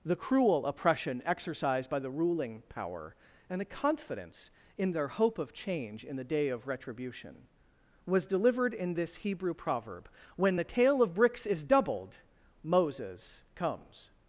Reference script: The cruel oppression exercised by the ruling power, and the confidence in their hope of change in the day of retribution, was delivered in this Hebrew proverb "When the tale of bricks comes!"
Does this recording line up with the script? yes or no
no